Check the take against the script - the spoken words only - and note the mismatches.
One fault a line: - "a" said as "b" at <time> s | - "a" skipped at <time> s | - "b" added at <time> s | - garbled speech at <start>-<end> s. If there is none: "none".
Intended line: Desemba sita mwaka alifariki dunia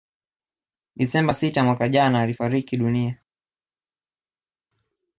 - "jana" added at 1.9 s